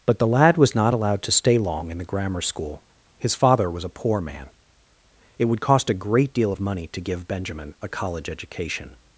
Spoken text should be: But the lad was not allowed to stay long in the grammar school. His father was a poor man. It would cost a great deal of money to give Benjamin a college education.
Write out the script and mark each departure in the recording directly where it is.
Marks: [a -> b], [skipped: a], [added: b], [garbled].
But the lad was not allowed to stay long in the grammar school. His father was a poor man. It would cost a great deal of money to give Benjamin a college education.